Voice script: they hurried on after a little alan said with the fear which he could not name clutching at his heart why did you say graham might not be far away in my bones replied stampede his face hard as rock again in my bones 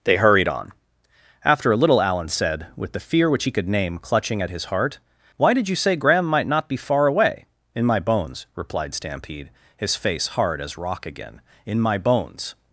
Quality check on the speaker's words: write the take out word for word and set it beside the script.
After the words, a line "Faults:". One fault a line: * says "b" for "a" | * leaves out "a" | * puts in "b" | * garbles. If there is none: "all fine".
they hurried on after a little alan said with the fear which he could name clutching at his heart why did you say graham might not be far away in my bones replied stampede his face hard as rock again in my bones
Faults:
* leaves out "not"